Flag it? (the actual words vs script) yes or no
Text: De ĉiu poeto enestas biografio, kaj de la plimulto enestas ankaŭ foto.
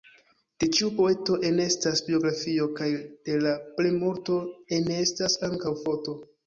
no